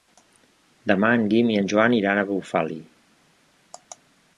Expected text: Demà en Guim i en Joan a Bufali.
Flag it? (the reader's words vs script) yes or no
yes